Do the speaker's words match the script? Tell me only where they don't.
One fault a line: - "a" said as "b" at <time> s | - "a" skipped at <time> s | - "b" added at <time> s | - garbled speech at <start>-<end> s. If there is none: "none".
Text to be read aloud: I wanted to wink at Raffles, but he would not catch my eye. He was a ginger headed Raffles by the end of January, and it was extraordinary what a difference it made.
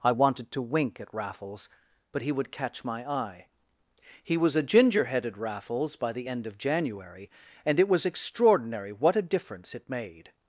- "not" skipped at 2.5 s